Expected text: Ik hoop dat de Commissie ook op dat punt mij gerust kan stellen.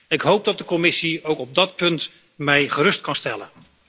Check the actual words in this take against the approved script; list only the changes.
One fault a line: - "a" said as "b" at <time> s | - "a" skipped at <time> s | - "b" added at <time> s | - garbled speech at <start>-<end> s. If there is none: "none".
none